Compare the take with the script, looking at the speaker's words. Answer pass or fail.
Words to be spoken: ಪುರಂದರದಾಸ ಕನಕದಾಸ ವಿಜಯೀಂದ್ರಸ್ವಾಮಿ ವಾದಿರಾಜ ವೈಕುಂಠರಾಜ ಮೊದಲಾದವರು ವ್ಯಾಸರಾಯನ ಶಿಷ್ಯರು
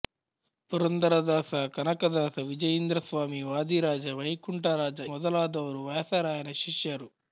pass